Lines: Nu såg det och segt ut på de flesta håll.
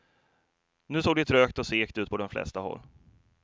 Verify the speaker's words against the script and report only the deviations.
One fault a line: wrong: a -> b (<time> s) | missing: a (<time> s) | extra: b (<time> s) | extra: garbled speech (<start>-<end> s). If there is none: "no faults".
extra: trögt (1.2 s)